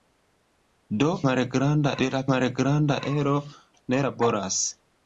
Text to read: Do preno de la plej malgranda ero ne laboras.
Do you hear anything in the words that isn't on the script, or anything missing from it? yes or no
yes